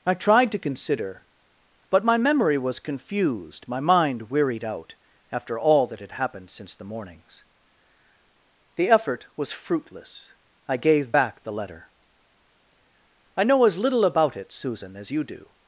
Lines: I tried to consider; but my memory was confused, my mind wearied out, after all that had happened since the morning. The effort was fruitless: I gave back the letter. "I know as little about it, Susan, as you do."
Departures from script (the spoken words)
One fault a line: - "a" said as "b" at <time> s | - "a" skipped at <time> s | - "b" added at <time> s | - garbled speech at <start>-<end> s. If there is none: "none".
- "morning" said as "mornings" at 6.8 s